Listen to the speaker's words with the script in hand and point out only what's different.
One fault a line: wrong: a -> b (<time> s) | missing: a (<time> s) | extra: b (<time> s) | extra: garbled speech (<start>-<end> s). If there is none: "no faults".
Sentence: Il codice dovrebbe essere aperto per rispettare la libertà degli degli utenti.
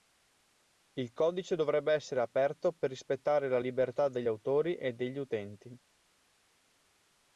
extra: autori e (4.3 s)